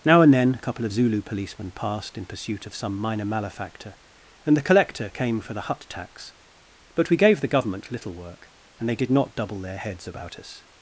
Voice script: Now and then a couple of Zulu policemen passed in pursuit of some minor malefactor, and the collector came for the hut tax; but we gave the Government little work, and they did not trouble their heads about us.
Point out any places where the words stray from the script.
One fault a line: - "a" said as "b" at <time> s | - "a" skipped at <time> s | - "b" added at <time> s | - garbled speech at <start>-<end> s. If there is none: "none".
- "trouble" said as "double" at 9.3 s